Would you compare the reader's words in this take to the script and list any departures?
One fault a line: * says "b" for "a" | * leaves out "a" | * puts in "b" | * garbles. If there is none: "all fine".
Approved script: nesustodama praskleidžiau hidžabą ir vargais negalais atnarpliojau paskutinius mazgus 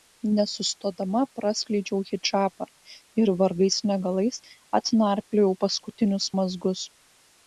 all fine